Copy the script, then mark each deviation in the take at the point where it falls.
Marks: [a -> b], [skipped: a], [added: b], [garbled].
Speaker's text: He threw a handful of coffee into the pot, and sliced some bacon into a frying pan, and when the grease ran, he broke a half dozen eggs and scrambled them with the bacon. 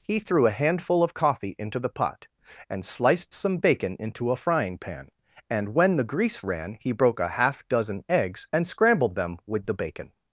He threw a handful of coffee into the pot, and sliced some bacon into a frying pan, and when the grease ran, he broke a half dozen eggs and scrambled them with the bacon.